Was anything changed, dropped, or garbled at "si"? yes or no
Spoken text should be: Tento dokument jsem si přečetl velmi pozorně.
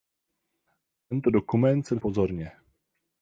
yes